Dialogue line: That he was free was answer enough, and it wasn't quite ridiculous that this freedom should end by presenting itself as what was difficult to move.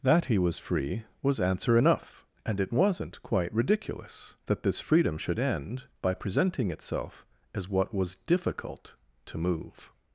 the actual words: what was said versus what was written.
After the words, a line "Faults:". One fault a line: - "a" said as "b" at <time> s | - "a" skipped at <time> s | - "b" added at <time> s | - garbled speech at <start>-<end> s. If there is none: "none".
That he was free was answer enough, and it wasn't quite ridiculous that this freedom should end by presenting itself as what was difficult to move.
Faults:
none